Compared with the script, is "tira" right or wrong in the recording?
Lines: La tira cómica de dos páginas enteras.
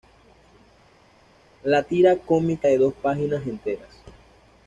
right